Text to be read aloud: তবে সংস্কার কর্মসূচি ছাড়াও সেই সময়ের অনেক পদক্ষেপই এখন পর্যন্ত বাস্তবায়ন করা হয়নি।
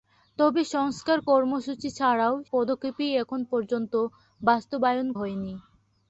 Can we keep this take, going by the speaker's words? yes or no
no